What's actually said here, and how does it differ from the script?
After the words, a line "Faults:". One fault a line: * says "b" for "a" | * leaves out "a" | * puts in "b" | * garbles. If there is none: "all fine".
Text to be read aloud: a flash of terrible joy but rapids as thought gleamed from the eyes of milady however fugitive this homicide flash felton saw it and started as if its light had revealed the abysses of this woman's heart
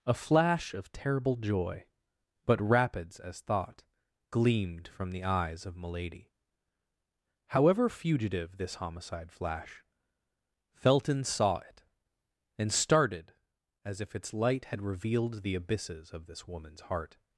a flash of terrible joy but rapids as thought gleamed from the eyes of milady however fugitive this homicide flash felton saw it and started as if its light had revealed the abysses of this woman's heart
Faults:
all fine